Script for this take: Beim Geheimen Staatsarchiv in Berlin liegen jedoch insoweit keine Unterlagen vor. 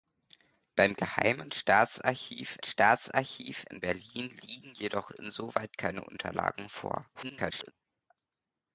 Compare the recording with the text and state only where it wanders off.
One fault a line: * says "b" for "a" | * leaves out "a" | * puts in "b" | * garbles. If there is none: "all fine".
* puts in "Staatsarchiv"
* garbles